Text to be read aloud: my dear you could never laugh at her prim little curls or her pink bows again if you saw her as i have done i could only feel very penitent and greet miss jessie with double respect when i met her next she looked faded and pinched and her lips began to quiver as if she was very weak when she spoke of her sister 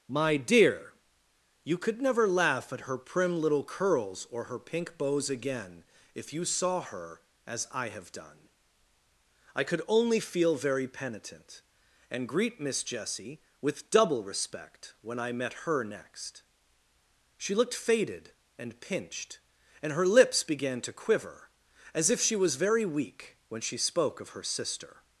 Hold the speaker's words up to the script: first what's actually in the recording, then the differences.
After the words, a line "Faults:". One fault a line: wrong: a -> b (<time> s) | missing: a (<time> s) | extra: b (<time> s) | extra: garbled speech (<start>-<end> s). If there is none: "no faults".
my dear you could never laugh at her prim little curls or her pink bows again if you saw her as i have done i could only feel very penitent and greet miss jessie with double respect when i met her next she looked faded and pinched and her lips began to quiver as if she was very weak when she spoke of her sister
Faults:
no faults